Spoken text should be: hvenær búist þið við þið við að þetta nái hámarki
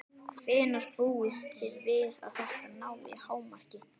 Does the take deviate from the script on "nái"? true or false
false